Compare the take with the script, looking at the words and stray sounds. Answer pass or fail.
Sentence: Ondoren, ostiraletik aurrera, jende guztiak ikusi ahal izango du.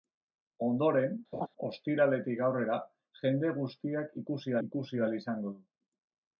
fail